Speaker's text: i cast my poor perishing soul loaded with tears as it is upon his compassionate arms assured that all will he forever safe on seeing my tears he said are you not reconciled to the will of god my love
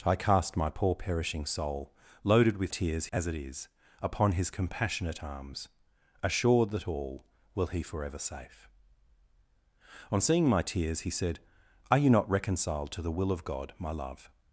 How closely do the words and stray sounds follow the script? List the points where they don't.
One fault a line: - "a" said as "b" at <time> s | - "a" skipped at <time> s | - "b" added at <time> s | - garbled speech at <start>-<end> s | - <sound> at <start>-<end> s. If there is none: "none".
none